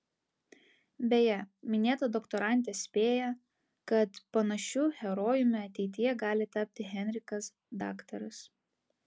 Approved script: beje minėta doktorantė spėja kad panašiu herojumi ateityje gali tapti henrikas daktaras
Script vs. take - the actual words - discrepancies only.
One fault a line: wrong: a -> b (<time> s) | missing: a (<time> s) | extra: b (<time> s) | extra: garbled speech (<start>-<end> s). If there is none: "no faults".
no faults